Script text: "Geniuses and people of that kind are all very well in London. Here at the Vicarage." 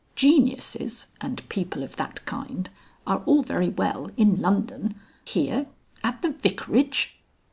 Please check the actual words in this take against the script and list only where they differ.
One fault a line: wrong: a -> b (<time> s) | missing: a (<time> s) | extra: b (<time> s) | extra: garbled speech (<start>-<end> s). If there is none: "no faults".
no faults